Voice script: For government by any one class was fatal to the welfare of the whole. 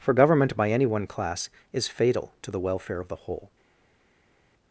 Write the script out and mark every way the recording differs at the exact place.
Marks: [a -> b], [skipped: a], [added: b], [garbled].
For government by any one class [was -> is] fatal to the welfare of the whole.